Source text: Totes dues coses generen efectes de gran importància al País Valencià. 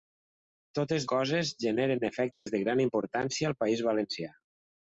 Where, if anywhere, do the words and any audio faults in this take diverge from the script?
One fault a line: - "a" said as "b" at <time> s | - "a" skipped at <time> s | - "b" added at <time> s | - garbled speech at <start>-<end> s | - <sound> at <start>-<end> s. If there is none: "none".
- "dues" skipped at 1.1 s
- dropout at 2.3-2.5 s